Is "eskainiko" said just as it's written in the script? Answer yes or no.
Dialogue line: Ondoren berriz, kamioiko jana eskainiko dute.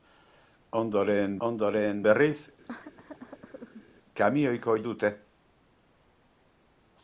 no